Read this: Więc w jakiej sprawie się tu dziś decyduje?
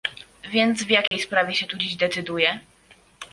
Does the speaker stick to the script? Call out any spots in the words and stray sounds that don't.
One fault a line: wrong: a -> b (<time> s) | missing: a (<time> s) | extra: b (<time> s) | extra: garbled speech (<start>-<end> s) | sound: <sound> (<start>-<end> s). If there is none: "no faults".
sound: dropout (1.1-1.1 s)